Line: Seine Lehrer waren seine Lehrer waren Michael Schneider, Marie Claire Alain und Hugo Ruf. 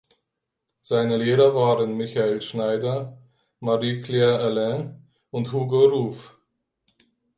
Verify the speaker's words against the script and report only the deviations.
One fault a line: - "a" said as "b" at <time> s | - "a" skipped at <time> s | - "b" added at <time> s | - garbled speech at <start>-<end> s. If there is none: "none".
- "seine Lehrer waren" skipped at 2.0 s